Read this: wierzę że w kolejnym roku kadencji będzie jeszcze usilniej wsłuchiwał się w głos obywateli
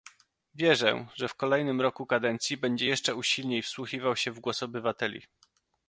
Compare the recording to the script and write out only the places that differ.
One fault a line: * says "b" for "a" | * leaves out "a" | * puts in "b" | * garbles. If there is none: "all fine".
all fine